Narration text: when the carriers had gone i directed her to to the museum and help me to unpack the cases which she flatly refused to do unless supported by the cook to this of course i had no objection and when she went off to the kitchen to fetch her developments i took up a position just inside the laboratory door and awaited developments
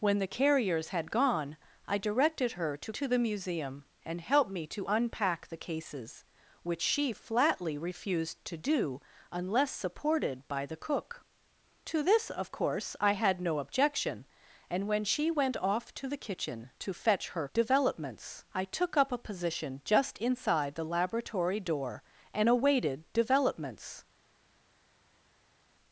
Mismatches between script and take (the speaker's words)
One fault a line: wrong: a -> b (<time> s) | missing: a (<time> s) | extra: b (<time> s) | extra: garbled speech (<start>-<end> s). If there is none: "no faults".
no faults